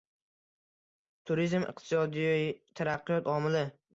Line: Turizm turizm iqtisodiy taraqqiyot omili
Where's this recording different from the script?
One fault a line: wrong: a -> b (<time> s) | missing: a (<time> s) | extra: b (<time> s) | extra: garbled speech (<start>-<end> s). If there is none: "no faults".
missing: turizm (1.7 s)